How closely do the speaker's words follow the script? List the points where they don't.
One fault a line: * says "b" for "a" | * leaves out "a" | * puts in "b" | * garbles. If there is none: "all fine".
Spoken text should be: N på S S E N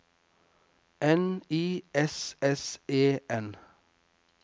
* says "I" for "på"